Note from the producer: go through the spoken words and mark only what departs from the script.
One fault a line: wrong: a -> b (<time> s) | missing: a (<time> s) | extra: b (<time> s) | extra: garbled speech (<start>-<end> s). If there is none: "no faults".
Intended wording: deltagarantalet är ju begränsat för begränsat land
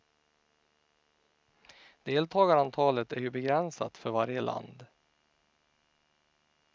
wrong: begränsat -> varje (4.1 s)